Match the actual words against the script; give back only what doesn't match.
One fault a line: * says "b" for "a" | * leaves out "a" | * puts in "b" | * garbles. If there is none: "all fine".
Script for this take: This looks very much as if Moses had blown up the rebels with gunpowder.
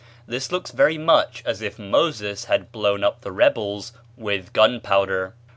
all fine